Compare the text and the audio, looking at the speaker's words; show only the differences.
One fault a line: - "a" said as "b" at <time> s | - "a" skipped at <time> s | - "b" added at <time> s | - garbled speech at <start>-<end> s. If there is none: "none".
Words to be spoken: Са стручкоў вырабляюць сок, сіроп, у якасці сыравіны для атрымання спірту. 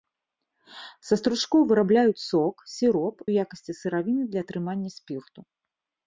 none